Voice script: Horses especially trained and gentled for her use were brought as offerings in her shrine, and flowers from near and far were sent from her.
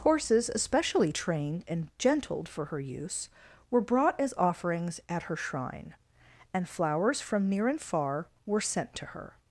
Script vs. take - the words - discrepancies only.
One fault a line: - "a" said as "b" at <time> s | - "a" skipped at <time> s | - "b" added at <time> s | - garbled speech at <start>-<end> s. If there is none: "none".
- "in" said as "at" at 5.1 s
- "from" said as "to" at 8.9 s